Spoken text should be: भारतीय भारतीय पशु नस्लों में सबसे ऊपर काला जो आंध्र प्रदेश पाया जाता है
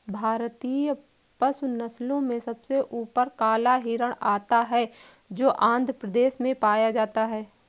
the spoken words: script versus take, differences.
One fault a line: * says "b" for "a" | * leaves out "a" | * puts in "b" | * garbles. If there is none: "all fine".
* leaves out "भारतीय"
* puts in "हिरण आता है"
* puts in "में"